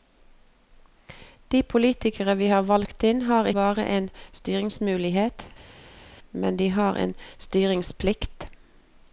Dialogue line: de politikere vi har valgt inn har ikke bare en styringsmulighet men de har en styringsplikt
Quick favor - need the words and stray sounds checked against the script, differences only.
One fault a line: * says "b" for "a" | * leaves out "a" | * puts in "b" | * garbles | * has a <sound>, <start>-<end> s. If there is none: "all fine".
* leaves out "ikke"